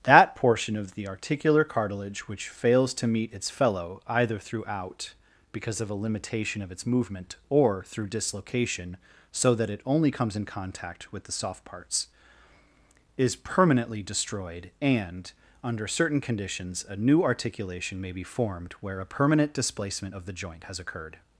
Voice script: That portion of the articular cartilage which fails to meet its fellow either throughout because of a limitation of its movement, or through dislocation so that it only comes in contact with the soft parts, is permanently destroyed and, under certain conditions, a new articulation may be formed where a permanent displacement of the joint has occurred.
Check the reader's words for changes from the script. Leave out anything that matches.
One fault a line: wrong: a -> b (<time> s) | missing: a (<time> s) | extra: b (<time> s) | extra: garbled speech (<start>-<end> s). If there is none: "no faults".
no faults